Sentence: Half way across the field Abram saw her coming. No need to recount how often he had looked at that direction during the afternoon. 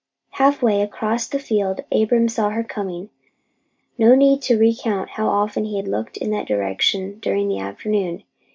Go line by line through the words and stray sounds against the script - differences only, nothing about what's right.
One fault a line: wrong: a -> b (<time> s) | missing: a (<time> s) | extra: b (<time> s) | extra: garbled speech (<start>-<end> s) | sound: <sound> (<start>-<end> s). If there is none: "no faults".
wrong: at -> in (6.2 s)